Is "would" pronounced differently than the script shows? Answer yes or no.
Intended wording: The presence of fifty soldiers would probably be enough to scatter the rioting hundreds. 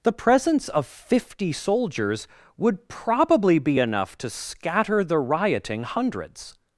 no